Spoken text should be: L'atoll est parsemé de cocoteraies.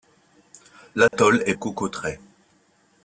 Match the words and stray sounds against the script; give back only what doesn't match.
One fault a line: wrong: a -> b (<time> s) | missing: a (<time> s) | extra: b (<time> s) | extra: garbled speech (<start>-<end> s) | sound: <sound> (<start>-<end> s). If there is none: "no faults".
sound: dropout (1.1-1.1 s)
missing: parsemé de (1.5 s)